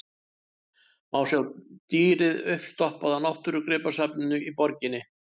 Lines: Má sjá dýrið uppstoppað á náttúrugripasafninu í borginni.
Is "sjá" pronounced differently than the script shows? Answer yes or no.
no